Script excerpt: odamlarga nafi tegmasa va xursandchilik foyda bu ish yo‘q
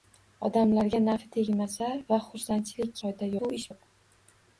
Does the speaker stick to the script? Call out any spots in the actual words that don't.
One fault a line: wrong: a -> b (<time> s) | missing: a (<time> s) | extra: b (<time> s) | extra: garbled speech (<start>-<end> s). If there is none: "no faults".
no faults